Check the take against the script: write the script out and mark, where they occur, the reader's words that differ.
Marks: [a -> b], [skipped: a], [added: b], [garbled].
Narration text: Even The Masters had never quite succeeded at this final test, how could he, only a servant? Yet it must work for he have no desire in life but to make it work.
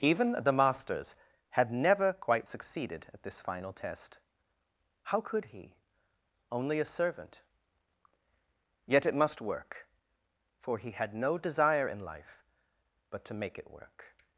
Even The Masters had never quite succeeded at this final test, how could he, only a servant? Yet it must work for he [have -> had] no desire in life but to make it work.